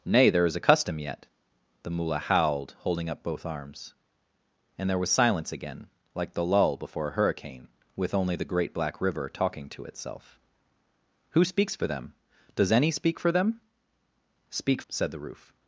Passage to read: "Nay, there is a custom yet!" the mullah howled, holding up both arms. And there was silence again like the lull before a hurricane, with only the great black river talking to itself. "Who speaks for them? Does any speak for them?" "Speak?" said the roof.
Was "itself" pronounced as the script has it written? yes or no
yes